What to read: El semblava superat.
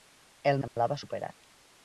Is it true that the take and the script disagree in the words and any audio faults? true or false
true